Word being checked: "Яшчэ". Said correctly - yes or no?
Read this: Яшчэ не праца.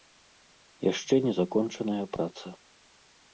yes